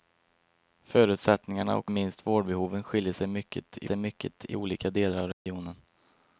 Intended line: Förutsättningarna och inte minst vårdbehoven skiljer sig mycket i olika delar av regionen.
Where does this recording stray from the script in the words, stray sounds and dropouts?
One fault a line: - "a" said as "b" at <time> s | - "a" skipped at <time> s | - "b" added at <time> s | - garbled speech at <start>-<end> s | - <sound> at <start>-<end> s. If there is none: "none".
- "inte" skipped at 1.9 s
- "sig mycket i" added at 3.8 s
- dropout at 5.3-5.5 s